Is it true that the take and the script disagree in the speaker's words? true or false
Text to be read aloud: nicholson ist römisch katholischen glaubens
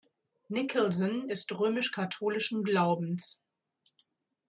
false